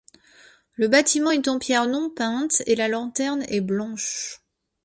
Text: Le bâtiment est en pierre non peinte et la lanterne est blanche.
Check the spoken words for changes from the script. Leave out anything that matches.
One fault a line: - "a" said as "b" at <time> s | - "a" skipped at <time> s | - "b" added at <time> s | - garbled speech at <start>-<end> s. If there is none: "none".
none